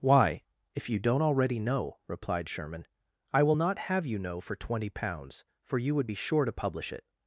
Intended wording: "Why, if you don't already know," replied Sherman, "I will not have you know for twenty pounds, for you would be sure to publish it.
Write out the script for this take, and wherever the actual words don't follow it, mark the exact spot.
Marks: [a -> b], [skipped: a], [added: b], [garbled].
"Why, if you don't already know," replied Sherman, "I will not have you know for twenty pounds, for you would be sure to publish it.